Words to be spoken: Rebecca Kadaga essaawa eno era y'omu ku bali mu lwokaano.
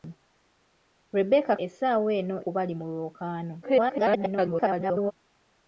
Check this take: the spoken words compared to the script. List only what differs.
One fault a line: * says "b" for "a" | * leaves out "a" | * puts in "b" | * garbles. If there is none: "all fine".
* leaves out "Kadaga"
* leaves out "era y'omu"
* garbles